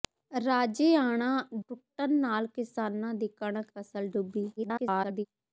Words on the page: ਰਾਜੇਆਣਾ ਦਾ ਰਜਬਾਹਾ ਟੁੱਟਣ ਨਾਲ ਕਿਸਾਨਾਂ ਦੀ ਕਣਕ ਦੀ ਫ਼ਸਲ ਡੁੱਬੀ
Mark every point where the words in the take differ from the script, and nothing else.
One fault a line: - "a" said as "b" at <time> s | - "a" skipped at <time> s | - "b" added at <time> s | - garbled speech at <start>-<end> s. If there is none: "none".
- "ਦਾ ਰਜਬਾਹਾ" skipped at 1.3 s
- "ਦੀ" skipped at 3.7 s
- garbled speech at 4.6-5.3 s